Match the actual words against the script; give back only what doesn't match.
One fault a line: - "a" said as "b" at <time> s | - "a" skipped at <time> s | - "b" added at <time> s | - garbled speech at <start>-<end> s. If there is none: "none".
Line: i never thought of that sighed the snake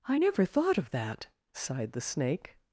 none